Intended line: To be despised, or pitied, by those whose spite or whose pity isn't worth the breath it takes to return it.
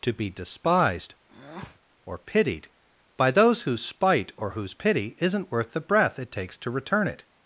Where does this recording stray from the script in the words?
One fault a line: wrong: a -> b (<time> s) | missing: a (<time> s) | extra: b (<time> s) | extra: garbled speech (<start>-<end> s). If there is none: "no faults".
no faults